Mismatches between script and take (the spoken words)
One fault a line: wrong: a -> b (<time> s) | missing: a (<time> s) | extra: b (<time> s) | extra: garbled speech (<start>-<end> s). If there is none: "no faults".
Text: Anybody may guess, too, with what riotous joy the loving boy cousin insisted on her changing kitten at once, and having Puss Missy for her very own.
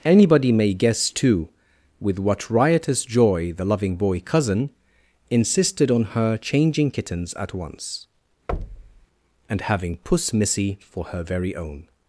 wrong: kitten -> kittens (6.9 s)